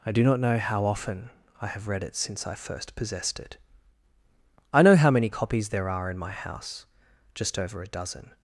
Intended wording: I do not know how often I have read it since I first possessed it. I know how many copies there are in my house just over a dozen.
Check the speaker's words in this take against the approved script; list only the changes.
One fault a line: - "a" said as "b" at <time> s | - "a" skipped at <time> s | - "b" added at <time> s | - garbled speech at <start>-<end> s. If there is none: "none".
none